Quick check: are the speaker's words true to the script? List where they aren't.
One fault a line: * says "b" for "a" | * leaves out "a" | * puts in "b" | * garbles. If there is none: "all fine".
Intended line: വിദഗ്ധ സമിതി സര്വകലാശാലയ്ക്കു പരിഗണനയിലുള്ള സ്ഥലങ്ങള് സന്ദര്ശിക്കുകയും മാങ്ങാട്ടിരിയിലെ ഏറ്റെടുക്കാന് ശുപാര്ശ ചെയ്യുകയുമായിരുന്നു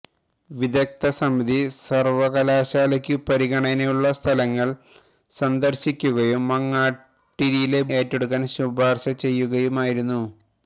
all fine